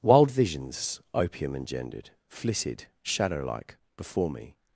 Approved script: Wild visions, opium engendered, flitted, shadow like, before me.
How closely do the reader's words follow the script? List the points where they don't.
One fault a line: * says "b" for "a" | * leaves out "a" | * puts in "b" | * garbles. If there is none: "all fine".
all fine